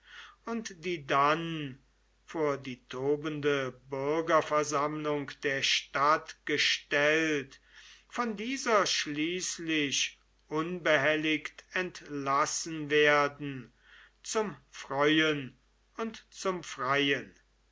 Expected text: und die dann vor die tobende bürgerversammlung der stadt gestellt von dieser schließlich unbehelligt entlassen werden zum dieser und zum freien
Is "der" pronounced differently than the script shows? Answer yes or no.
no